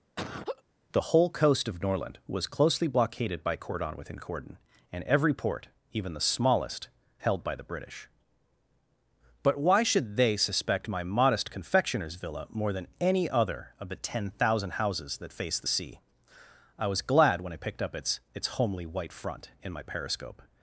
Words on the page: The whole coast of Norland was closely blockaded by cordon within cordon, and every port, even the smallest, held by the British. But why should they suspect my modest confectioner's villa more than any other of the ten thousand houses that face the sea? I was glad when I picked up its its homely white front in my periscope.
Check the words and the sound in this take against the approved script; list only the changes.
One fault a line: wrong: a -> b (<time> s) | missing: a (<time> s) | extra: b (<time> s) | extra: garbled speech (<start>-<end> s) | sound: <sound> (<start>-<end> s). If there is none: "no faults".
sound: laugh (0.2-0.6 s)